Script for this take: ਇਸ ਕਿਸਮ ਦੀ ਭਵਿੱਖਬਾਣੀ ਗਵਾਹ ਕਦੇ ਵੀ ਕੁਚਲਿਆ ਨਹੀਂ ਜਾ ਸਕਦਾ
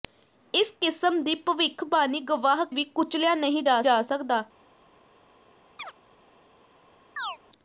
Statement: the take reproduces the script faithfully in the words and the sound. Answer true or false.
false